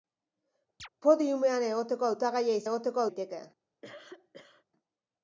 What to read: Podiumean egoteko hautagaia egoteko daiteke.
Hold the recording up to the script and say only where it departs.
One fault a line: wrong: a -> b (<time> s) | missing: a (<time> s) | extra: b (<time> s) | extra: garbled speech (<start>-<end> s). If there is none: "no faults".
no faults